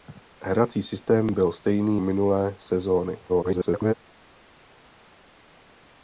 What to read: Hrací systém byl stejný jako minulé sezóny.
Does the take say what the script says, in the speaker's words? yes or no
no